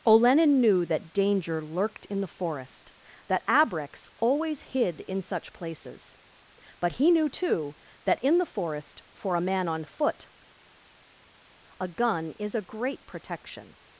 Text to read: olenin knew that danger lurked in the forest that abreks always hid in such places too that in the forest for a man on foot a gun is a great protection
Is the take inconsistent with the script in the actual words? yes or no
yes